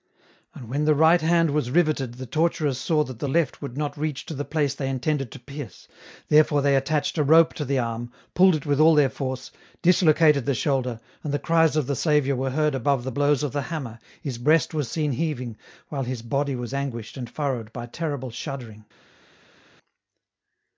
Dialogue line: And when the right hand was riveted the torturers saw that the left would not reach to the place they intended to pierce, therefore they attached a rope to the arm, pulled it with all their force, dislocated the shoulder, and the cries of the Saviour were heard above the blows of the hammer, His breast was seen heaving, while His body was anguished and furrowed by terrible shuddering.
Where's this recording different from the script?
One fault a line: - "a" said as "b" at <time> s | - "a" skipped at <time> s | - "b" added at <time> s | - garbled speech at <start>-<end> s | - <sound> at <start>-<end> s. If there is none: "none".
none